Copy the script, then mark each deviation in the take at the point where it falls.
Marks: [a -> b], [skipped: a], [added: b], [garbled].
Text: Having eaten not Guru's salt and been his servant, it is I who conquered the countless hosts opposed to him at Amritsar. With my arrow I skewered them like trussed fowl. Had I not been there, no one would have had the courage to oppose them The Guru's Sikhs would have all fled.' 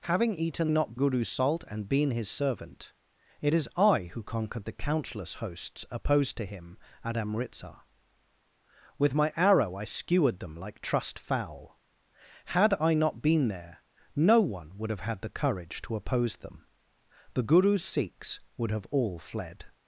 Having eaten not Guru's salt and been his servant, it is I who conquered the countless hosts opposed to him at Amritsar. With my arrow I skewered them like trussed fowl. Had I not been there, no one would have had the courage to oppose them The Guru's Sikhs would have all fled.'